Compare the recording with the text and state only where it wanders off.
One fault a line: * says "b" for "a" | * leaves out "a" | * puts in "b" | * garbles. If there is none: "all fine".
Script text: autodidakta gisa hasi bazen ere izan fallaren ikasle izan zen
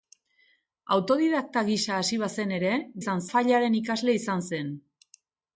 all fine